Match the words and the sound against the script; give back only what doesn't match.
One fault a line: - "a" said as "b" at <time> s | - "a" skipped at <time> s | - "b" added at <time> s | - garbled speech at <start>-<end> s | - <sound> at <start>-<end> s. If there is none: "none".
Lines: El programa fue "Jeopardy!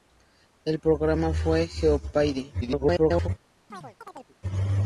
- garbled speech at 2.6-3.3 s
- chirp at 3.7-4.4 s